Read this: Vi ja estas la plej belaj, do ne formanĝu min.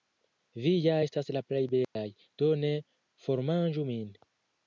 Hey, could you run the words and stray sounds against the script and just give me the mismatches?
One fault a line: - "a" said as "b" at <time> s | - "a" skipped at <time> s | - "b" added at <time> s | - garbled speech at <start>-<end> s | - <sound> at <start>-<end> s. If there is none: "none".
- dropout at 1.8-2.0 s